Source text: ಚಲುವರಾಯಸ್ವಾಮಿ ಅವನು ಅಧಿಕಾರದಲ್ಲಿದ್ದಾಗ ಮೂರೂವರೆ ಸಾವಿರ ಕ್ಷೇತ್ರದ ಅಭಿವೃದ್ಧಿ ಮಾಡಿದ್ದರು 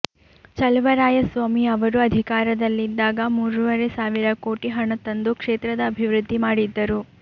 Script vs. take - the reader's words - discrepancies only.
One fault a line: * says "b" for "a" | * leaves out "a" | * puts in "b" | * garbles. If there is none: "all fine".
* says "ಅವರು" for "ಅವನು"
* puts in "ಕೋಟಿ ಹಣ ತಂದು"